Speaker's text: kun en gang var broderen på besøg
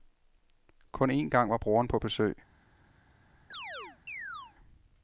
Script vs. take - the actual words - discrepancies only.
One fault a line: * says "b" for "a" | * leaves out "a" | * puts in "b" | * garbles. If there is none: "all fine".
all fine